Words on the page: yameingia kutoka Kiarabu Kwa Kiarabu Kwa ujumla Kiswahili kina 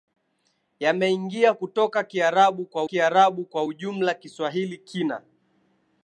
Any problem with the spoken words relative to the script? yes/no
no